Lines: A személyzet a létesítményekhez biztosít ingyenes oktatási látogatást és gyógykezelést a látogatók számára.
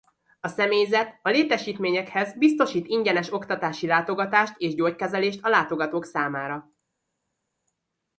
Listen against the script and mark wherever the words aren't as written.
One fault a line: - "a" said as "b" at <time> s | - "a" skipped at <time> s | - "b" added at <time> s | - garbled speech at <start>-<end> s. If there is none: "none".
none